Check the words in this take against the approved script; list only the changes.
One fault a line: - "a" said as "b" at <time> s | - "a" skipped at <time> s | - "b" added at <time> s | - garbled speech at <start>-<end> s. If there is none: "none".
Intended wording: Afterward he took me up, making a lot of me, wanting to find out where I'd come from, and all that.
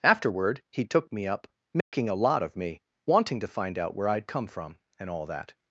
none